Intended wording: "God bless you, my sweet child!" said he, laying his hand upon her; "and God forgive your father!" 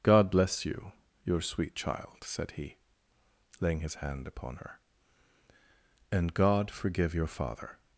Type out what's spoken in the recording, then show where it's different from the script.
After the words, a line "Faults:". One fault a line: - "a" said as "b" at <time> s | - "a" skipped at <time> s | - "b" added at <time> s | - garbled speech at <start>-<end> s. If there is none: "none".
"God bless you, your sweet child!" said he, laying his hand upon her; "and God forgive your father!"
Faults:
- "my" said as "your" at 1.2 s